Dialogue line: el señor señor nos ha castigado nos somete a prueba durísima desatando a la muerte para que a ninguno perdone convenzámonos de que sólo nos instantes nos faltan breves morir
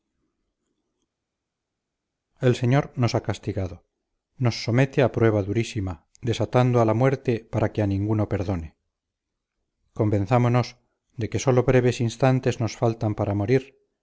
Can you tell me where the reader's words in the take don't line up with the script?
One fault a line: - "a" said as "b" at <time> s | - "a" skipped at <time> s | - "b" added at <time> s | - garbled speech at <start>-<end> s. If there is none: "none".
- "señor" skipped at 2.9 s
- "nos" said as "breves" at 11.6 s
- "breves" said as "para" at 13.2 s